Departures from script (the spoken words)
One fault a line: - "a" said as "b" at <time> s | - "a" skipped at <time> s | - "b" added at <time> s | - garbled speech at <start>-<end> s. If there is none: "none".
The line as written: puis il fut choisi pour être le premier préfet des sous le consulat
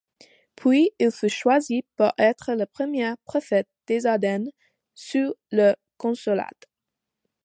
- "ardennes" added at 4.1 s